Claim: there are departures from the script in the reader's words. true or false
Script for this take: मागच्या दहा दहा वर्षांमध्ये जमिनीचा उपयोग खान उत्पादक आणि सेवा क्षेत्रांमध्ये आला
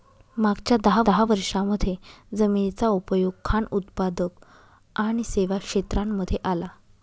false